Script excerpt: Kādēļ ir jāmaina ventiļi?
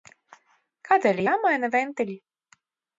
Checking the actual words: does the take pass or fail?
pass